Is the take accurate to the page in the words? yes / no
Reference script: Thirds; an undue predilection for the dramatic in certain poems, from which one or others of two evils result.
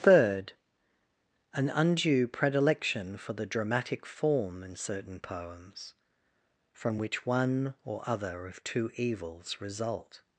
no